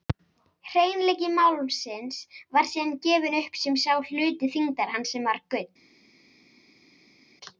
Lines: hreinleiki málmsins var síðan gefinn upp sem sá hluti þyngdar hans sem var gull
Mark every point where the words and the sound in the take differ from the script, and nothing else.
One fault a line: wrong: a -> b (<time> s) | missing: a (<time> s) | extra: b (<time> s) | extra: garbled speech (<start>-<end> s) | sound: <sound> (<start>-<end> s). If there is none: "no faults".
no faults